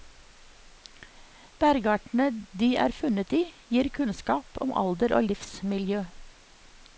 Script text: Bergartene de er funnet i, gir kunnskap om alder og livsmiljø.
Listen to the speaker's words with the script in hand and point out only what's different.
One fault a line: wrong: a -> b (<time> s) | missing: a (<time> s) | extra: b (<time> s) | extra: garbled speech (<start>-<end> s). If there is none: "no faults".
no faults